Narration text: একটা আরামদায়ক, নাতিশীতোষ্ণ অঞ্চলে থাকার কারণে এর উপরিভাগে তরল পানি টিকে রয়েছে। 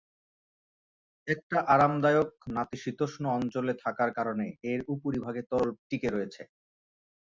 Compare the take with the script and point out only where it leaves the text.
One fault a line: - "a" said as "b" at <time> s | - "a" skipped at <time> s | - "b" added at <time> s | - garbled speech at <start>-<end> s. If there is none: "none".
- "পানি" skipped at 5.7 s